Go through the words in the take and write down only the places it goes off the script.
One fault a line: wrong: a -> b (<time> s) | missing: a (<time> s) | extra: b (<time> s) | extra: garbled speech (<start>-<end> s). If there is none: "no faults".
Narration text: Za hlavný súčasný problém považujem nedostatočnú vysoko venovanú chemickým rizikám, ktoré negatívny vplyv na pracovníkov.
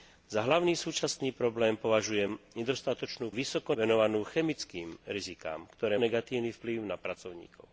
no faults